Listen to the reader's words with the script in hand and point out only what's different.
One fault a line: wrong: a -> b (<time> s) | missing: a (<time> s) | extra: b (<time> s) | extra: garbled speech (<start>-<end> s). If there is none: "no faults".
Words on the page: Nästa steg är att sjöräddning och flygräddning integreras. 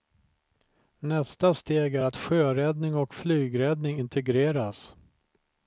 no faults